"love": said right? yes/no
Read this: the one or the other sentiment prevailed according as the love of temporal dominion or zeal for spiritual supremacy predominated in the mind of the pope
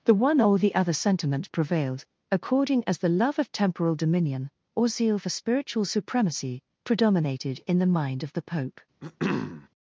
yes